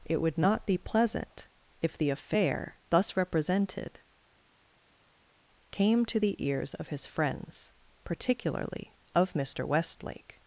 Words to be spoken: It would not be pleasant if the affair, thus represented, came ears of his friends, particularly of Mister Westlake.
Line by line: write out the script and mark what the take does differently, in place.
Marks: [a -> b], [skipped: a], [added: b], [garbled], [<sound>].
It would not be pleasant if the affair, thus represented, came [added: to the] ears of his friends, particularly of Mister Westlake.